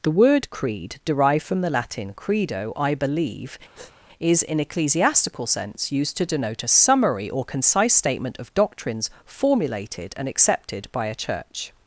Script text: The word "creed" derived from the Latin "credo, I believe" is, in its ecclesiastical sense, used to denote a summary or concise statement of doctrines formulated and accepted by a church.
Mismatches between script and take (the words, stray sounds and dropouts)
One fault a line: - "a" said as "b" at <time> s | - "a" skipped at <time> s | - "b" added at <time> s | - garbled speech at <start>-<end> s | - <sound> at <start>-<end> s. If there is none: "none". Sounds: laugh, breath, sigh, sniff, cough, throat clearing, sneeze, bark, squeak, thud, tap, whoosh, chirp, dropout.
- breath at 3.7-4.0 s
- "its" skipped at 4.6 s